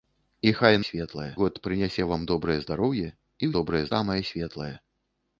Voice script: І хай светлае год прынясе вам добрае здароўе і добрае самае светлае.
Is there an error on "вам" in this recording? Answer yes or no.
no